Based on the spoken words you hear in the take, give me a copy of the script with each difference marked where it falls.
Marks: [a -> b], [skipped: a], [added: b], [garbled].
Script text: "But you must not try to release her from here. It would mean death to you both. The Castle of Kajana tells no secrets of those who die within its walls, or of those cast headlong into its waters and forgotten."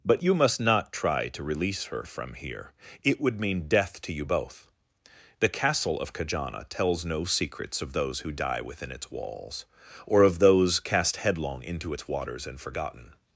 "But you must not try to release her from here. It would mean death to you both. The Castle of Kajana tells no secrets of those who die within its walls, or of those cast headlong into its waters and forgotten."